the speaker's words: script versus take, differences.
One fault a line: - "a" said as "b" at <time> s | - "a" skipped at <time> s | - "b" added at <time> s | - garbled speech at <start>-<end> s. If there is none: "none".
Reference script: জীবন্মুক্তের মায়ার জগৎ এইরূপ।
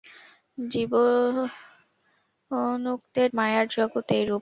none